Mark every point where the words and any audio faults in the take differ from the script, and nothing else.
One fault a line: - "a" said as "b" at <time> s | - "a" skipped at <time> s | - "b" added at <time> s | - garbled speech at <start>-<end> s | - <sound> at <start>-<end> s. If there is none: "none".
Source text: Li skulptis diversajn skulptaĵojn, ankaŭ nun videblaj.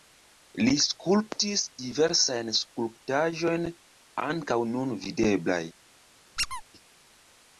- squeak at 6.4-6.6 s